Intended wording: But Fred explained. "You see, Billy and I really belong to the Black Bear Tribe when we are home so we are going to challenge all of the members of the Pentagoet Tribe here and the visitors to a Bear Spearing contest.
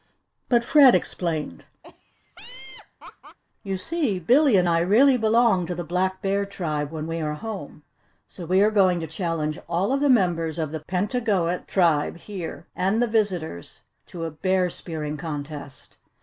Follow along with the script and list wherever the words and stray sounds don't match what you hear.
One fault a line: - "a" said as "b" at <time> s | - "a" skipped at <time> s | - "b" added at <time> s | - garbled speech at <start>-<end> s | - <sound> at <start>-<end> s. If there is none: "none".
- laugh at 1.8-3.4 s